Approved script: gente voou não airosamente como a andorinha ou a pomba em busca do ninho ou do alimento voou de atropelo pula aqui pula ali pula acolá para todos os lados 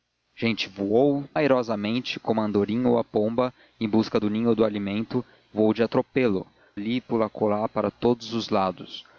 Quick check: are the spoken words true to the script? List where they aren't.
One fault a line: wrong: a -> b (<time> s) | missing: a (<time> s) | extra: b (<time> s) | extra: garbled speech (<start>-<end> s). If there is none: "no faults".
missing: não (1.2 s)
missing: pula aqui pula (6.5 s)